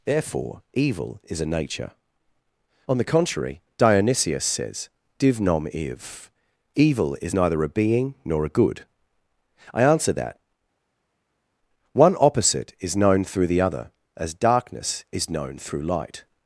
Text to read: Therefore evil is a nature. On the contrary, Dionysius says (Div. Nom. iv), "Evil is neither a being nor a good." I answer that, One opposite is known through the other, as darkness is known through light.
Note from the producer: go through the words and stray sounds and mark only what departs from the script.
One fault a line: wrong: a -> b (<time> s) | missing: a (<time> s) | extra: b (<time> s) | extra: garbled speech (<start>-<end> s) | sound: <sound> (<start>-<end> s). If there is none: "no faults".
no faults